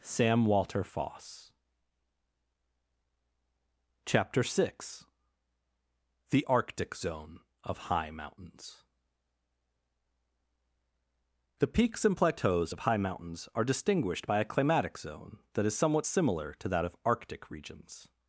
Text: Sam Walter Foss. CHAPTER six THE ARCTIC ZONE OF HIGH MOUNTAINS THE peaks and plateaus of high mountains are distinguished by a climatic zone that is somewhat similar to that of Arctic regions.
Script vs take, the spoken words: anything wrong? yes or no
no